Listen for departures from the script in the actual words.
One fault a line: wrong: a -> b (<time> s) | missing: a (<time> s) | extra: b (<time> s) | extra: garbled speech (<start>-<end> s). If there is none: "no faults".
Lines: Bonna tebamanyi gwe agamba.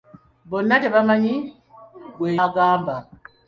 no faults